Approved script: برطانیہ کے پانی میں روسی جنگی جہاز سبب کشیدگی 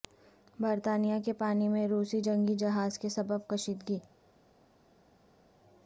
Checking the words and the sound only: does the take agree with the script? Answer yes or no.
no